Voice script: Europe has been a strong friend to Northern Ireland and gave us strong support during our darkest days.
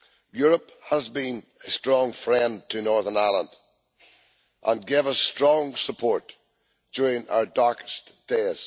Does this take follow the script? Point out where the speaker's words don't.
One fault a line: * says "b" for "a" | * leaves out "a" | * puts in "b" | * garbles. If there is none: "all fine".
all fine